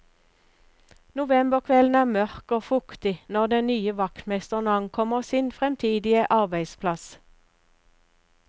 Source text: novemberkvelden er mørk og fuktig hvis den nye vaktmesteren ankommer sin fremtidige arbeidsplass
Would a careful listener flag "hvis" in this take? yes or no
yes